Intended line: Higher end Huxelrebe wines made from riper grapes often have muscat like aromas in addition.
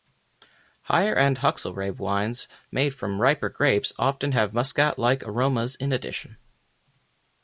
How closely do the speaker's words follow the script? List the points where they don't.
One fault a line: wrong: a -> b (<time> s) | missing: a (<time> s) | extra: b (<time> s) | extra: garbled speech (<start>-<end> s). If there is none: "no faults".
no faults